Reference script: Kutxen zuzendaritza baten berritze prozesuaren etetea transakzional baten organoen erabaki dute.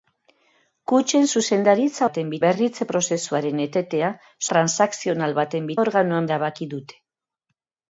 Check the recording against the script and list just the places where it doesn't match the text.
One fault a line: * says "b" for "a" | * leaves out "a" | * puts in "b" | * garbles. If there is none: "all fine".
all fine